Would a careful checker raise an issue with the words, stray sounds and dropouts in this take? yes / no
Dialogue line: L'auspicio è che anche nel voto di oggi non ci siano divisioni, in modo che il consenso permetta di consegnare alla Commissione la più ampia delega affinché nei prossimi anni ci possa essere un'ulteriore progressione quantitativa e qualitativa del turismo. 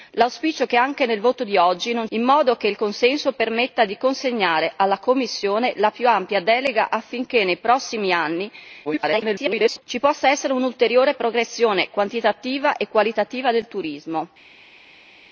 yes